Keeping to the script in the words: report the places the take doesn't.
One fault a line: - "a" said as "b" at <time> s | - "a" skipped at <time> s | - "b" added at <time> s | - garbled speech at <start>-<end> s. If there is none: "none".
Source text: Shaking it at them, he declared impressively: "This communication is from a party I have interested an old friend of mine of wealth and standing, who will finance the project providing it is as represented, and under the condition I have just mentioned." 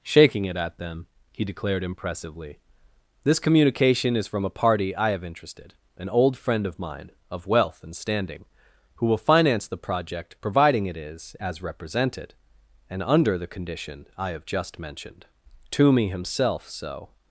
- "Toomey himself so" added at 15.7 s